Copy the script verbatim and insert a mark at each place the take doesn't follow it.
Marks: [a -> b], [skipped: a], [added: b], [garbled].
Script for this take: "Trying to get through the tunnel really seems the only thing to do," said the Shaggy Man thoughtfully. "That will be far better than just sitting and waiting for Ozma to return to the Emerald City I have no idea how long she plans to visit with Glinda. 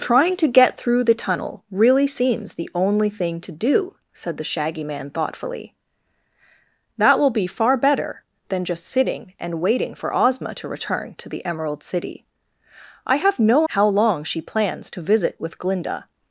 "Trying to get through the tunnel really seems the only thing to do," said the Shaggy Man thoughtfully. "That will be far better than just sitting and waiting for Ozma to return to the Emerald City I have no [skipped: idea] how long she plans to visit with Glinda.